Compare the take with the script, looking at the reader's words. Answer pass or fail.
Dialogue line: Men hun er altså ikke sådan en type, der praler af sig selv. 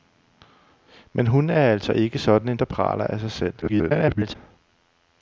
fail